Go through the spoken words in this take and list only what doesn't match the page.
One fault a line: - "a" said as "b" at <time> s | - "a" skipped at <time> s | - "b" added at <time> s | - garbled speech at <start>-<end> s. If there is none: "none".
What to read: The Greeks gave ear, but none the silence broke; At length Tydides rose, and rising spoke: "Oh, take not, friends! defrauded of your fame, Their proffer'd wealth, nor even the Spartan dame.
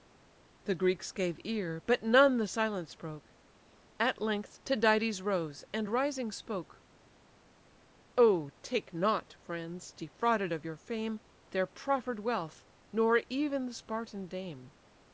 none